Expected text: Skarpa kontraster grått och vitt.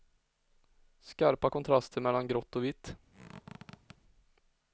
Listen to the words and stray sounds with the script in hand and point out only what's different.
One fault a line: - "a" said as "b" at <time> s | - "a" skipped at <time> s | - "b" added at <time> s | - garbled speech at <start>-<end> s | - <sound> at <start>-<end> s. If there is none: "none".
- "mellan" added at 2.0 s
- squeak at 3.1-4.0 s